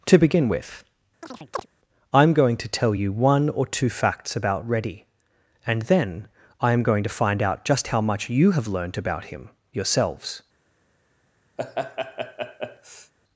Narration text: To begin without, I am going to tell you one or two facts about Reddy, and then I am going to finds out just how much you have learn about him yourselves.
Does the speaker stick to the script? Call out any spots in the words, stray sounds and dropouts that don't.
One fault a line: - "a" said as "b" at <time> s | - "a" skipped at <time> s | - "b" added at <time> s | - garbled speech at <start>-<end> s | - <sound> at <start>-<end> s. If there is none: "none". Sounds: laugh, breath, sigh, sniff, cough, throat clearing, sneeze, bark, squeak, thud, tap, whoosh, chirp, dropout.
- "without" said as "with" at 0.5 s
- chirp at 1.2-1.7 s
- "finds" said as "find" at 7.1 s
- "learn" said as "learned" at 8.7 s
- laugh at 11.6-13.1 s